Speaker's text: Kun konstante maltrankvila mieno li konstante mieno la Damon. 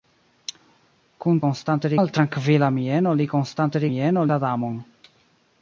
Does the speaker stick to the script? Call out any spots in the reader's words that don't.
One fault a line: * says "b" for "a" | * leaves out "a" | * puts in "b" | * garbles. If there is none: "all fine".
all fine